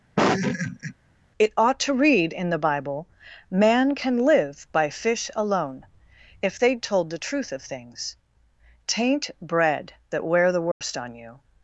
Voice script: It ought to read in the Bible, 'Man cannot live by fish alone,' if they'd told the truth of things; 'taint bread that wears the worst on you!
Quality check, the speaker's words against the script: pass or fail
fail